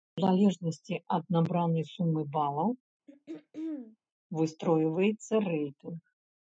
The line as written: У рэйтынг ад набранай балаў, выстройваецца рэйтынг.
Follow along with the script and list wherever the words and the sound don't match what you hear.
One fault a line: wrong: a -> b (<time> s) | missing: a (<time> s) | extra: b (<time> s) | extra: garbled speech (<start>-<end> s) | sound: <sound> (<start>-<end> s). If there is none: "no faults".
wrong: рэйтынг -> залежнасці (0.2 s)
extra: сумы (1.9 s)
sound: throat clearing (3.1-4.0 s)